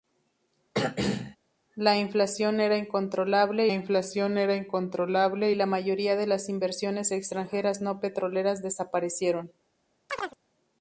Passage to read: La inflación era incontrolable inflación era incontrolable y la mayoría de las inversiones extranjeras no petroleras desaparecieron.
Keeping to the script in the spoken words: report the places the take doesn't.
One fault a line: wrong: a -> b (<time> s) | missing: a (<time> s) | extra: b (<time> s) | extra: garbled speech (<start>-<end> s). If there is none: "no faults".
no faults